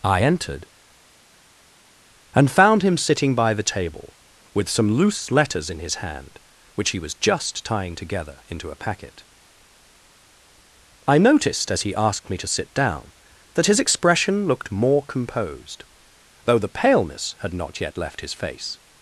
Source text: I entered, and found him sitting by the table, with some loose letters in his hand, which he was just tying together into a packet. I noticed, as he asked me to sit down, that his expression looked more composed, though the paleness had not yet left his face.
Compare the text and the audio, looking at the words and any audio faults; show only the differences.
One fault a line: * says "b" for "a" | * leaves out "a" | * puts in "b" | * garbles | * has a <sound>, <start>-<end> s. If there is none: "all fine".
all fine